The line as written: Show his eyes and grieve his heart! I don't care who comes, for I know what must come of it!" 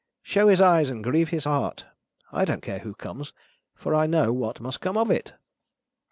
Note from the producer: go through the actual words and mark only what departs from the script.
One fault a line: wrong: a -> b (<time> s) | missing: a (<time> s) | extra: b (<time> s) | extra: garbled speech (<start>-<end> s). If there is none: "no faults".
no faults